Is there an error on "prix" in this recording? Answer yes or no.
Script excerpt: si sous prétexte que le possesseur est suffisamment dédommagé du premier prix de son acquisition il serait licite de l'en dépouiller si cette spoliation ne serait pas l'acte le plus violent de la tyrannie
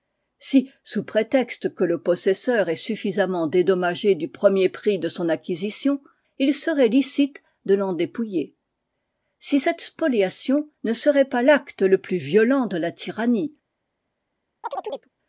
no